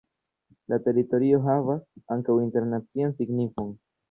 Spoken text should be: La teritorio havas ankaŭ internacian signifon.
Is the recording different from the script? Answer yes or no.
no